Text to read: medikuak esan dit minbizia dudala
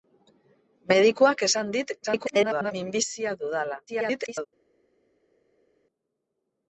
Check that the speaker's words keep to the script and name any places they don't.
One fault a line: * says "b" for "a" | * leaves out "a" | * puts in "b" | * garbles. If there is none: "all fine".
* garbles
* garbles